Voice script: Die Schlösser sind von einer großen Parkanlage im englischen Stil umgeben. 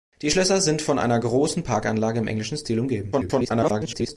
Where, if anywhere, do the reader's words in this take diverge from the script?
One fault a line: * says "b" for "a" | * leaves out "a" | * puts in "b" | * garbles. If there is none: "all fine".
* garbles